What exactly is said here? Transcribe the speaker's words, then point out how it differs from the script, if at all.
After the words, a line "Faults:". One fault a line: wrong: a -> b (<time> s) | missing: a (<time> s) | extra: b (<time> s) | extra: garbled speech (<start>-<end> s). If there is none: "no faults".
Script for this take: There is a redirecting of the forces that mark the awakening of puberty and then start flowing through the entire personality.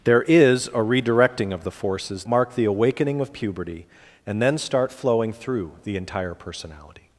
There is a redirecting of the forces mark the awakening of puberty and then start flowing through the entire personality.
Faults:
missing: that (2.2 s)